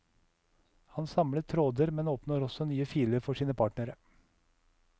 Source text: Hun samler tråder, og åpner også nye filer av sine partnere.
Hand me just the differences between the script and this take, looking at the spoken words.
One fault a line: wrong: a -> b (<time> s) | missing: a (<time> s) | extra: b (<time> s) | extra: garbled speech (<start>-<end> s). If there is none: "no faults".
wrong: Hun -> Han (0.8 s)
wrong: og -> men (1.9 s)
wrong: av -> for (3.3 s)